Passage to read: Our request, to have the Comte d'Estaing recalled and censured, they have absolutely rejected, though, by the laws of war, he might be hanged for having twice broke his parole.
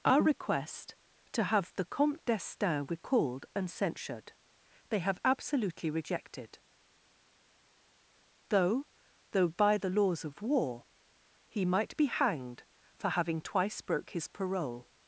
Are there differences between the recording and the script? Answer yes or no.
yes